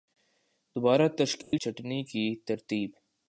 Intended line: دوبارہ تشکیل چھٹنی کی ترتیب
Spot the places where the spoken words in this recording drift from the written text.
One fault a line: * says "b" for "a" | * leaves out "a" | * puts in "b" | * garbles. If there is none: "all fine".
all fine